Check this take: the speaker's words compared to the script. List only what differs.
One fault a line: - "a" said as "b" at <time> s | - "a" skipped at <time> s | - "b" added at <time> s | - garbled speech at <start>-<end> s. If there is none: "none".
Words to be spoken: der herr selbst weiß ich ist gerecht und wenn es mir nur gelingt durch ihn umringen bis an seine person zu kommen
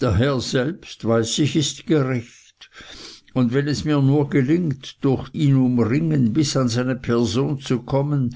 none